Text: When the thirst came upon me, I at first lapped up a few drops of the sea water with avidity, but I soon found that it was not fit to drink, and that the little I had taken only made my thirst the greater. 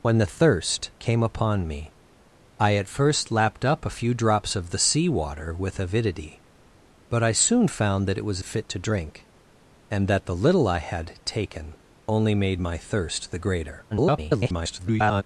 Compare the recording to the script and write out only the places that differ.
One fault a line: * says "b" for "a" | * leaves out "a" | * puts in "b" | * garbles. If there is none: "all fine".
* leaves out "not"
* garbles